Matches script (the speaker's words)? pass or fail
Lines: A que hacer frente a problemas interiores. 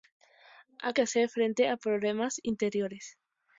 pass